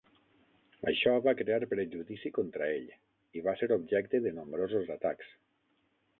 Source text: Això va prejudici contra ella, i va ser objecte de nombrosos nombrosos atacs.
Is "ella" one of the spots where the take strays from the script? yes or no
yes